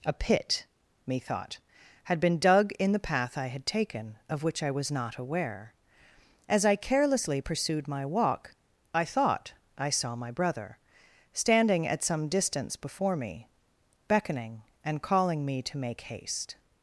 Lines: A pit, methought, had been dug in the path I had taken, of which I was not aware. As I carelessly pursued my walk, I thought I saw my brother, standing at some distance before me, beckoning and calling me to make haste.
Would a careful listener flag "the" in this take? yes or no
no